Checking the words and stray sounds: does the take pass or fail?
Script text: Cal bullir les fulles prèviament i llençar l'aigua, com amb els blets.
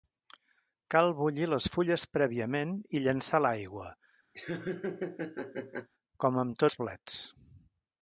fail